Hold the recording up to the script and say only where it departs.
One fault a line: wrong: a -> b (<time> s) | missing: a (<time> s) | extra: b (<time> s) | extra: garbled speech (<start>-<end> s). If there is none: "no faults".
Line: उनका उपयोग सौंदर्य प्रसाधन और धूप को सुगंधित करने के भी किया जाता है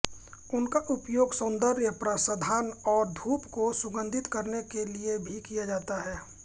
extra: लिए (4.9 s)